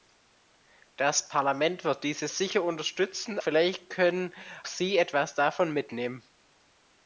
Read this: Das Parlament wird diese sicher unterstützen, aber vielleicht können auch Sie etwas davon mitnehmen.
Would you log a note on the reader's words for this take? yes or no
yes